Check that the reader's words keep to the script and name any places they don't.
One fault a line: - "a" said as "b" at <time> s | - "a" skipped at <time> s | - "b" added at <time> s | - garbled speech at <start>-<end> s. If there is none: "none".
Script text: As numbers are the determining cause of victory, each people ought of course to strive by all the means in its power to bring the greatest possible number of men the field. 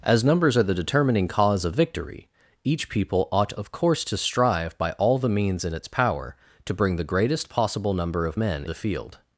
none